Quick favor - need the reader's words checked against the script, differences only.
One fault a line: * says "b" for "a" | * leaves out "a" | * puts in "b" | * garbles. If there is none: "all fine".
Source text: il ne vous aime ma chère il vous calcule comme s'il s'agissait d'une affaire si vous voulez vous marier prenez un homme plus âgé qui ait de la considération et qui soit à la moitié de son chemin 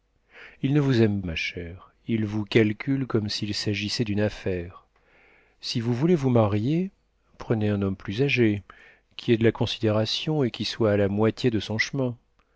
all fine